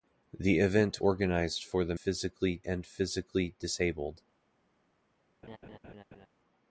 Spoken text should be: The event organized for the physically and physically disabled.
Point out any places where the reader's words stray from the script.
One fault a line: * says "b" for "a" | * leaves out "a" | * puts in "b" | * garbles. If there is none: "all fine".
all fine